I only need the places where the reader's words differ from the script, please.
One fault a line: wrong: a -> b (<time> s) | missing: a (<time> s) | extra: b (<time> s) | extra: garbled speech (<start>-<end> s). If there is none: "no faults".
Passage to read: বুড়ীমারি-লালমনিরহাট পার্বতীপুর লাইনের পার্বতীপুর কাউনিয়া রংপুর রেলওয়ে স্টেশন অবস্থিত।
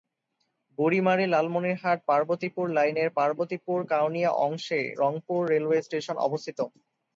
extra: অংশে (4.5 s)